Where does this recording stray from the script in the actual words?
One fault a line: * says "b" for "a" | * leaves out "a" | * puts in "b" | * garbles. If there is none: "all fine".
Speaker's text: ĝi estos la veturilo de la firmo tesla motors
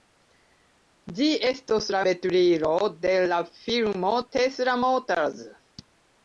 all fine